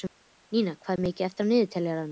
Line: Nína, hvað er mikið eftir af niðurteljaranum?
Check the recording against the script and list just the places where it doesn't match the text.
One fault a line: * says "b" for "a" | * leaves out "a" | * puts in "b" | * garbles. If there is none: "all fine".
all fine